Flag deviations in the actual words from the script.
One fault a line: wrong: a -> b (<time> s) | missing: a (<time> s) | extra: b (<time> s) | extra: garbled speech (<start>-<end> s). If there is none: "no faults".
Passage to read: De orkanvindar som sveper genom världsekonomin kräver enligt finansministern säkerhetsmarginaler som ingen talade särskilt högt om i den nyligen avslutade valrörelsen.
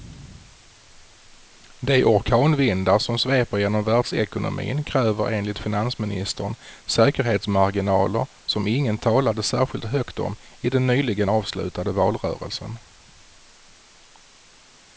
no faults